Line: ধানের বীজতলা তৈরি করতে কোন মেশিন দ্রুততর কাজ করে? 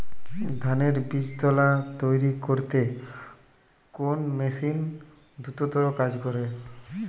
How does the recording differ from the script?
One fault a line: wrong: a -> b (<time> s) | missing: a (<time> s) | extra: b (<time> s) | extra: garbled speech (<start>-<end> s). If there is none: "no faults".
no faults